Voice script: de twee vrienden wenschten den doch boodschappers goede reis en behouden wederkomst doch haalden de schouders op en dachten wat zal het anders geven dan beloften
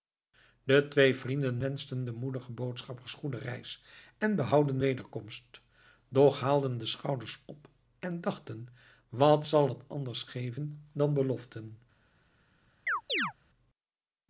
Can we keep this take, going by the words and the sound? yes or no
no